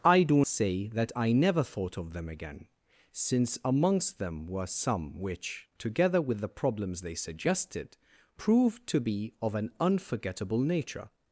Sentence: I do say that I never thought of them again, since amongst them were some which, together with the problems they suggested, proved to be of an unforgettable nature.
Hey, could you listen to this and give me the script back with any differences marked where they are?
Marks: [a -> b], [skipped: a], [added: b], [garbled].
I do say that I never thought of them again, since amongst them were some which, together with the problems they suggested, proved to be of an unforgettable nature.